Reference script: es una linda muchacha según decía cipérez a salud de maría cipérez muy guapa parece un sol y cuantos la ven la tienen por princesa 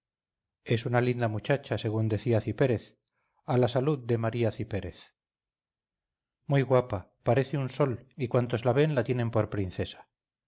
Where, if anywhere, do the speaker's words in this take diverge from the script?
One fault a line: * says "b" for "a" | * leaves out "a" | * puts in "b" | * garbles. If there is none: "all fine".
* puts in "la"